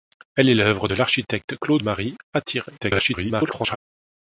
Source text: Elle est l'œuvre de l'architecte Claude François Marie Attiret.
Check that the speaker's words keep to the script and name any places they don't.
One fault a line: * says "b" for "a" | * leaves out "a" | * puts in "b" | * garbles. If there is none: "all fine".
* leaves out "François"
* garbles